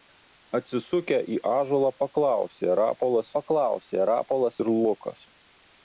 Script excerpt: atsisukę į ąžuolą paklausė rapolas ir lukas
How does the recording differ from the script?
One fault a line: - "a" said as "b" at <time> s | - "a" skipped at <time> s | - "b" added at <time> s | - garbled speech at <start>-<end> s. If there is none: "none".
- "paklausė rapolas" added at 3.4 s